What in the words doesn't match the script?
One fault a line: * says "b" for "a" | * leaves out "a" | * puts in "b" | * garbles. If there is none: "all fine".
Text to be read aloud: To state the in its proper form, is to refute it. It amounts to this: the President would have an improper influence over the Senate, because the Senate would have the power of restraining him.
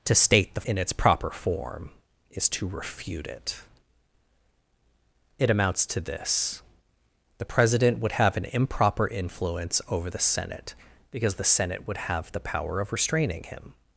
all fine